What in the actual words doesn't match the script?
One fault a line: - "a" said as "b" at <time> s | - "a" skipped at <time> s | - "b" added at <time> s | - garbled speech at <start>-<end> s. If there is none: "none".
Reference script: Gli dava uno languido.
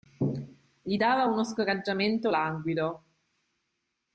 - "scoraggiamento" added at 1.4 s